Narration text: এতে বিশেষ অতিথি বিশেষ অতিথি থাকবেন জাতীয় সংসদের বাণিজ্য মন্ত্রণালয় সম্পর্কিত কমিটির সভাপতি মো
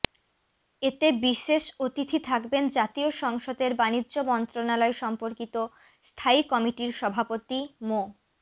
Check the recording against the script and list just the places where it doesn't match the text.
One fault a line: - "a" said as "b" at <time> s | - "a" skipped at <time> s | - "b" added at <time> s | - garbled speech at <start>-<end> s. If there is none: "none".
- "বিশেষ অতিথি" skipped at 2.2 s
- "স্থায়ী" added at 6.1 s